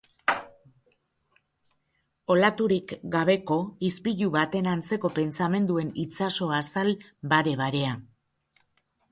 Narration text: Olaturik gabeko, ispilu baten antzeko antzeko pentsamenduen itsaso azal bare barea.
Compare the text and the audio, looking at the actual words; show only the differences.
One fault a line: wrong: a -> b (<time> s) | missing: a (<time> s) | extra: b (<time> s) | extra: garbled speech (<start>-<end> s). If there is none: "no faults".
missing: antzeko (5.1 s)